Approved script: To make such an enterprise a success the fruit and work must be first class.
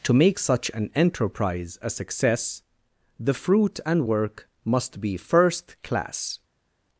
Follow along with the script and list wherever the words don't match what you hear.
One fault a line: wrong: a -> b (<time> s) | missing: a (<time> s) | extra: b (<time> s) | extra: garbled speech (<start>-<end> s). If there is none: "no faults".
no faults